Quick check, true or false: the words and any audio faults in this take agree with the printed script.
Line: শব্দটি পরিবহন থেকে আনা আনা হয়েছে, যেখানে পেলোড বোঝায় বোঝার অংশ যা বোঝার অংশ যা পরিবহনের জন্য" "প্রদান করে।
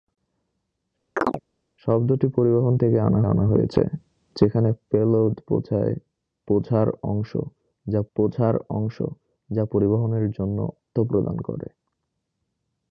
false